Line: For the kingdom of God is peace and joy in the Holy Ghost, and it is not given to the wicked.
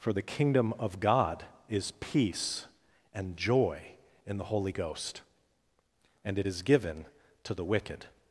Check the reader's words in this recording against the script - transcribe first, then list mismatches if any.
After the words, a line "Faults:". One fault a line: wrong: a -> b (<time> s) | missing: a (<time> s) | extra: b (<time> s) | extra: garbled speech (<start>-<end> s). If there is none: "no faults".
For the kingdom of God is peace and joy in the Holy Ghost, and it is given to the wicked.
Faults:
missing: not (6.6 s)